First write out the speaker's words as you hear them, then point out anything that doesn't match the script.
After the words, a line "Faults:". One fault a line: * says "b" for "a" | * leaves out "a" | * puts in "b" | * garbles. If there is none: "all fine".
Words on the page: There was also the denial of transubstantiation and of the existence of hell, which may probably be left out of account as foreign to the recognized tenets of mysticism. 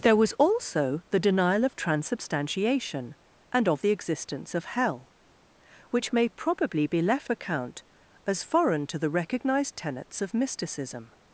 There was also the denial of transubstantiation and of the existence of hell, which may probably be left account as foreign to the recognized tenets of mysticism.
Faults:
* leaves out "out of"